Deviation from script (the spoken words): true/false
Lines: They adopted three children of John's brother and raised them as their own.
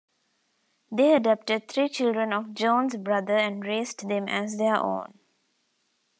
false